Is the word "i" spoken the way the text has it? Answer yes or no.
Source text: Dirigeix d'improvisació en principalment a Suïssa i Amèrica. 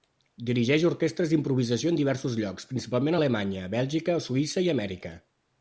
yes